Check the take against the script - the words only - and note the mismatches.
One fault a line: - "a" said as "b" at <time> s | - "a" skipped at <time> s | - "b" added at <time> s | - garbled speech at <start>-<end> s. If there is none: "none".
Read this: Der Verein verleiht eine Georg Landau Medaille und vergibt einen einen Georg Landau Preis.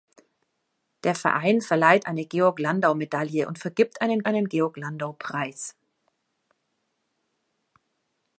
none